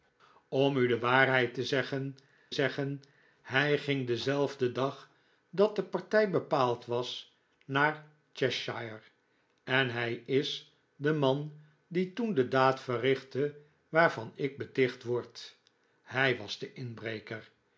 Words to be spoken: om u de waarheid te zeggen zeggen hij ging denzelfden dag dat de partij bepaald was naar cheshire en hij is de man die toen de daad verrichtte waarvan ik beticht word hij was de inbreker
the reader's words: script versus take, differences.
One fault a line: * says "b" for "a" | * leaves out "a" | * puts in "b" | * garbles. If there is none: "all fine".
all fine